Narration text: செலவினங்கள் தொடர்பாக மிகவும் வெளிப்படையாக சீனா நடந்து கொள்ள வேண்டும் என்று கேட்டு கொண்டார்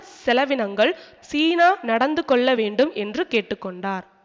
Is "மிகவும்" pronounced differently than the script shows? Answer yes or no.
yes